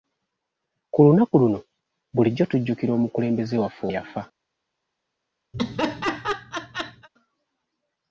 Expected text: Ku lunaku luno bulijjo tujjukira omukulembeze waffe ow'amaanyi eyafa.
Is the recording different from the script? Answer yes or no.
yes